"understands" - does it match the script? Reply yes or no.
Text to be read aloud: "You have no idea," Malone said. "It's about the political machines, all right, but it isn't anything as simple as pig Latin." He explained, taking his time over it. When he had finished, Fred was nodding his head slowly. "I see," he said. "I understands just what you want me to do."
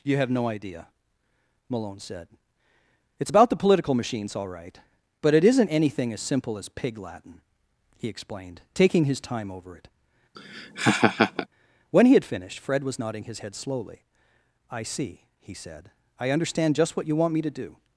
no